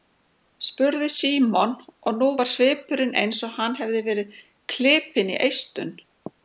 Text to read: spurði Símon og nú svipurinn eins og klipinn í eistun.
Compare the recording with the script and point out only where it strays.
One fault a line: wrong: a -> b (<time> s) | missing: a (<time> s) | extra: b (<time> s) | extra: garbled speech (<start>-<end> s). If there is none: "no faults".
extra: var (2.4 s)
extra: hann hefði verið (3.6 s)